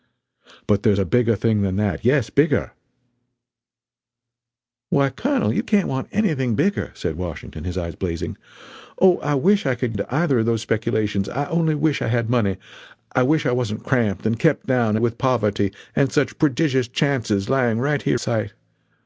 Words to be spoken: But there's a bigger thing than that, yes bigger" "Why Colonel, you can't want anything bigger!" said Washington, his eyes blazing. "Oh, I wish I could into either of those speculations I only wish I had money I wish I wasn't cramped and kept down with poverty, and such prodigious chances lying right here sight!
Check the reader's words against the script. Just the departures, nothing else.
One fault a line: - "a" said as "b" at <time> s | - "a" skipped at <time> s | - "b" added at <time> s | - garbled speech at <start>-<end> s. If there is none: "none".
none